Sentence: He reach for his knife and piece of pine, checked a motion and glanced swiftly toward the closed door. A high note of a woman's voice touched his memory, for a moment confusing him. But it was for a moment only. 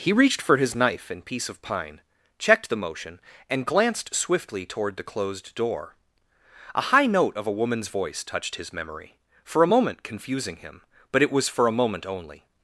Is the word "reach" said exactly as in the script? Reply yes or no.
no